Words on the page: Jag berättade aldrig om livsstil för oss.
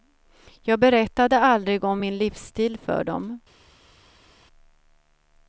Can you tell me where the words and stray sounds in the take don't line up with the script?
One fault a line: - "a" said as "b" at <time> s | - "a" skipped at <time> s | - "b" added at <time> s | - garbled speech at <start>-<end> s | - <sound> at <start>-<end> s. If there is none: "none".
- "min" added at 2.0 s
- "oss" said as "dem" at 3.0 s